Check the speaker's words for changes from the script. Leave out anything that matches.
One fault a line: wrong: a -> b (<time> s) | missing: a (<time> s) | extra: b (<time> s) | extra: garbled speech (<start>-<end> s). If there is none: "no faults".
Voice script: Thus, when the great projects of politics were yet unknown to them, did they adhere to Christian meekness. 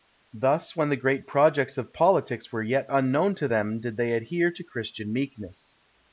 no faults